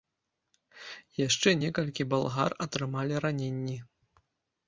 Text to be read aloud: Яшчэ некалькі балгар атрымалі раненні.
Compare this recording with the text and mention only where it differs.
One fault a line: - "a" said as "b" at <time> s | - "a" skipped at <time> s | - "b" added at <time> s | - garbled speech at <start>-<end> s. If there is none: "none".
none